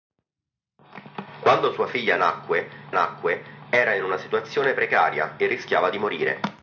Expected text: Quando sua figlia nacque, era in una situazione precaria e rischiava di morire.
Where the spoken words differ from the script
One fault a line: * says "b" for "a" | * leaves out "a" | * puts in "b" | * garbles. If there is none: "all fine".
* puts in "nacque"